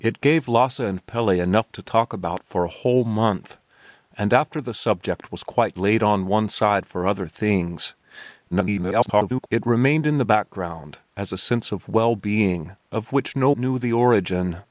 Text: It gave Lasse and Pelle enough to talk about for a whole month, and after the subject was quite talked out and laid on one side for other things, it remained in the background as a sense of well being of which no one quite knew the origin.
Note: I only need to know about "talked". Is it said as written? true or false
false